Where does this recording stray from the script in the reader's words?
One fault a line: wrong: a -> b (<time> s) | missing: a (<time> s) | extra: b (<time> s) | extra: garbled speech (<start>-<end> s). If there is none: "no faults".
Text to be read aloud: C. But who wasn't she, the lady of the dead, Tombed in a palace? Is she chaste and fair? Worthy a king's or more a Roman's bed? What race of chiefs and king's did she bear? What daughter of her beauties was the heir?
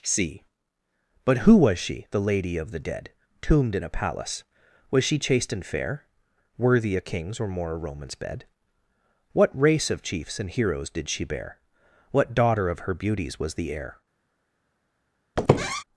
wrong: wasn't -> was (1.6 s)
wrong: Is -> Was (4.9 s)
wrong: king's -> heroes (10.5 s)